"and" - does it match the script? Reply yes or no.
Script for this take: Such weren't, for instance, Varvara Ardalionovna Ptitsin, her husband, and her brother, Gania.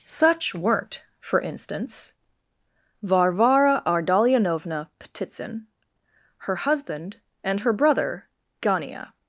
yes